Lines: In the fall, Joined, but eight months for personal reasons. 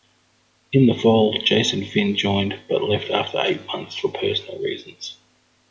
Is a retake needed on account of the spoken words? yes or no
yes